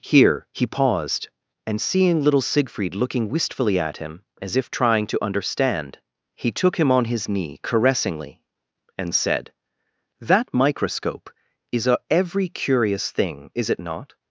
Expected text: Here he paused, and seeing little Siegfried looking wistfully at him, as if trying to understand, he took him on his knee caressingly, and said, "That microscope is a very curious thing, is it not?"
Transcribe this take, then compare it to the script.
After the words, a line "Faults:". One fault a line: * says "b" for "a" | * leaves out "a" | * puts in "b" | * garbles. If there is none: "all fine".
Here he paused, and seeing little Siegfried looking wistfully at him, as if trying to understand, he took him on his knee caressingly, and said, "That microscope is a every curious thing, is it not?"
Faults:
* says "every" for "very"